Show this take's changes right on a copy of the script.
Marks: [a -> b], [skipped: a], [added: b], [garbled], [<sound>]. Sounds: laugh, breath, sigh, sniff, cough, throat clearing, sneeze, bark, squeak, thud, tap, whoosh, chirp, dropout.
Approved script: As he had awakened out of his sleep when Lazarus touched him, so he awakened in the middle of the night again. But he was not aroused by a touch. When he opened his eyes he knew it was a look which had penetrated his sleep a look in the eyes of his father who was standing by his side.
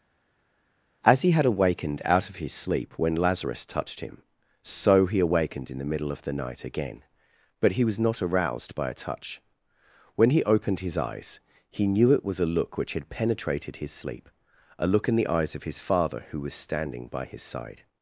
As he had awakened out of his sleep when Lazarus touched him, so he awakened in the middle of the night again. But he was not aroused by a touch. When he opened his eyes he knew it was a look which had penetrated his sleep a look in the eyes of his father who was standing by his side.